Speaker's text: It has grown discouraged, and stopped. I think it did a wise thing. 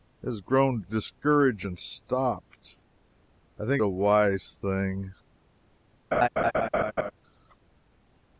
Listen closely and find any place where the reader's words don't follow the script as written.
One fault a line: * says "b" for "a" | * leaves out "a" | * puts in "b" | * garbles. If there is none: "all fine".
* leaves out "it did"